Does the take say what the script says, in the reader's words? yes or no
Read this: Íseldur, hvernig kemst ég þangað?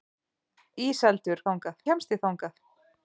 no